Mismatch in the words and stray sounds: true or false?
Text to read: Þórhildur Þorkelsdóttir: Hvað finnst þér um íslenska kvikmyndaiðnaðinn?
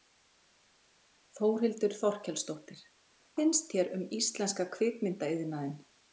true